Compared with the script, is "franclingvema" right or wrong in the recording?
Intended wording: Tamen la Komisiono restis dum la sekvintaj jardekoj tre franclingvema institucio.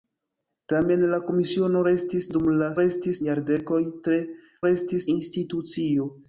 wrong